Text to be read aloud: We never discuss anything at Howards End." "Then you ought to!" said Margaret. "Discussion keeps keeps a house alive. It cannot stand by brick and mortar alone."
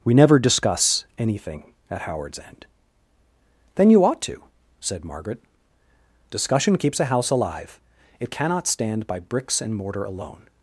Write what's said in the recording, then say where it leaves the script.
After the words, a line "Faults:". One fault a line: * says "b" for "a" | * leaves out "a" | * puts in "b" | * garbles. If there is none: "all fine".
We never discuss anything at Howards End." "Then you ought to!" said Margaret. "Discussion keeps a house alive. It cannot stand by bricks and mortar alone."
Faults:
* leaves out "keeps"
* says "bricks" for "brick"